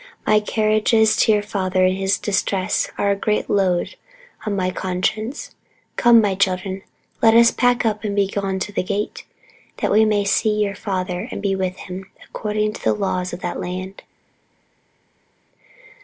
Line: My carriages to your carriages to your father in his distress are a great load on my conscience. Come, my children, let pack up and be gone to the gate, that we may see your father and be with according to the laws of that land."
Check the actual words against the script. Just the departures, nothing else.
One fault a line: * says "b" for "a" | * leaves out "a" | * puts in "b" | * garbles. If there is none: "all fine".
* leaves out "carriages to your"
* puts in "us"
* puts in "him"